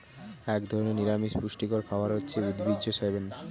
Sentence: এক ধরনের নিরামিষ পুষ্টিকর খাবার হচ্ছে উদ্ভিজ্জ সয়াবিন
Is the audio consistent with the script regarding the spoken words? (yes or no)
yes